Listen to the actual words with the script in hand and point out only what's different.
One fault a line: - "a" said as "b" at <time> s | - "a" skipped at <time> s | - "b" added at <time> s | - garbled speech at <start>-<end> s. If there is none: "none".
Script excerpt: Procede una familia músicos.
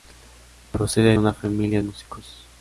none